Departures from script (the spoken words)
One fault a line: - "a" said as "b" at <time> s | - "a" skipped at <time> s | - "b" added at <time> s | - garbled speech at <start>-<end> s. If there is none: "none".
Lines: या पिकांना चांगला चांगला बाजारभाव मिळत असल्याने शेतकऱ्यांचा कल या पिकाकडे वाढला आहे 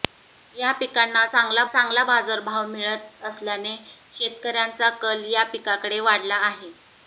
none